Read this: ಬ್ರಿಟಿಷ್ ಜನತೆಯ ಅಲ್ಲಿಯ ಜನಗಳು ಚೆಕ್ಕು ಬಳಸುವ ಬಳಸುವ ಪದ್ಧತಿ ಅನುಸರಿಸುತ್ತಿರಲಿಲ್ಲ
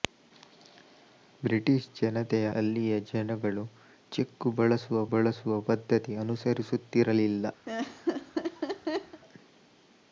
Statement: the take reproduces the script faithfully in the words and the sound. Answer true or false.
false